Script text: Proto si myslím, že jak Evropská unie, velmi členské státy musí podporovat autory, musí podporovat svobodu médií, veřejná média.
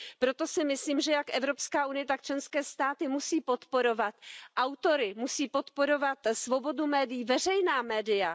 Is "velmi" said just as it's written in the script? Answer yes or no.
no